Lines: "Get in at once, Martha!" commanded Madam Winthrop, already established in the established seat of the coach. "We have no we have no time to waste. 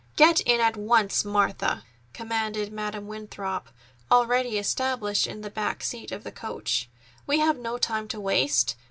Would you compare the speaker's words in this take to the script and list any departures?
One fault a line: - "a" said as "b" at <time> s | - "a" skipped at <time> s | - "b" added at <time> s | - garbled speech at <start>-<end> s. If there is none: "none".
- "established" said as "back" at 5.5 s
- "we have no" skipped at 7.8 s